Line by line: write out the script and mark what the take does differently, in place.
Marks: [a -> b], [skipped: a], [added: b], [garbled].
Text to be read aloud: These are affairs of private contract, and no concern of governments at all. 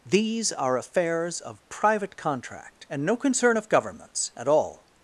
These are affairs of private contract, and no concern of governments at all.